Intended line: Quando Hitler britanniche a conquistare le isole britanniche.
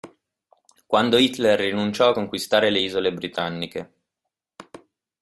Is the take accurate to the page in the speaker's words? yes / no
no